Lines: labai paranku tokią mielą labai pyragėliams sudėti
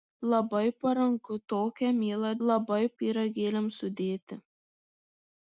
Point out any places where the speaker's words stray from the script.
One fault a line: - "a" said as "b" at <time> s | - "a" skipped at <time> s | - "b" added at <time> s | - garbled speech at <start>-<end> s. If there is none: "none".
none